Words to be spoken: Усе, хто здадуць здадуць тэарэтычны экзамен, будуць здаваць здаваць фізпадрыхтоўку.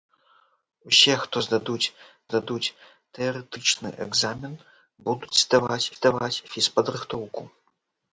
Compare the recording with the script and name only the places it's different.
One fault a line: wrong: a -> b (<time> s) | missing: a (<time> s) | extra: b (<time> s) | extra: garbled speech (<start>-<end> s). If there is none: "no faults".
no faults